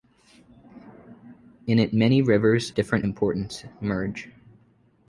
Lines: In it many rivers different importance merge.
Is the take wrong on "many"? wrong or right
right